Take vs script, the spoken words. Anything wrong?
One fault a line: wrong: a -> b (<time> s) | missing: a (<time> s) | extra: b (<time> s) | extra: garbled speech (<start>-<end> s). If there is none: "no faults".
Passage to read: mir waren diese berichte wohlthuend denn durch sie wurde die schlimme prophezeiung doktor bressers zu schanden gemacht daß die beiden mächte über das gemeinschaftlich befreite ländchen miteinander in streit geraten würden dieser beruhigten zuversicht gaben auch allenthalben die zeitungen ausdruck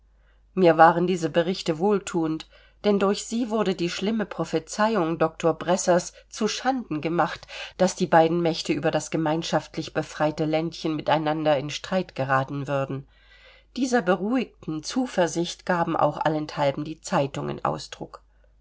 no faults